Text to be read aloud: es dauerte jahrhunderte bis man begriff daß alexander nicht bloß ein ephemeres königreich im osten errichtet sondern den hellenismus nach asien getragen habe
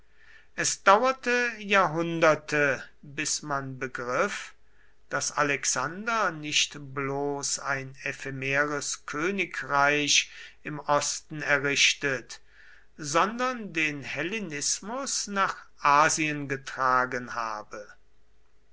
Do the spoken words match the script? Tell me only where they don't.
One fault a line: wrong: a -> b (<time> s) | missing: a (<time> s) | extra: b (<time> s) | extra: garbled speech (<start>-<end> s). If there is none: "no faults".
no faults